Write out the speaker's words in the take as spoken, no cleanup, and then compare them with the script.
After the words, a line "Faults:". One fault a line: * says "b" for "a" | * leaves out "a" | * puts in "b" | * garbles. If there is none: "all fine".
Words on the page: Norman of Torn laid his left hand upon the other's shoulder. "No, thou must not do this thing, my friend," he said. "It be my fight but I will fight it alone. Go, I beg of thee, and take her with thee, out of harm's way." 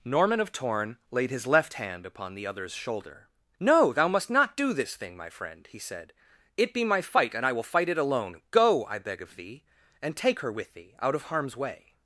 Norman of Torn laid his left hand upon the other's shoulder. "No, thou must not do this thing, my friend," he said. "It be my fight and I will fight it alone. Go, I beg of thee, and take her with thee, out of harm's way."
Faults:
* says "and" for "but"